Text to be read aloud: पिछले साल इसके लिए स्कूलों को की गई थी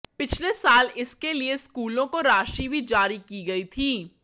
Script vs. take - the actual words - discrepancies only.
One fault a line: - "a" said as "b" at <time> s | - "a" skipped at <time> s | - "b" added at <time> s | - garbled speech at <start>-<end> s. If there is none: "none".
- "राशि भी जारी" added at 2.2 s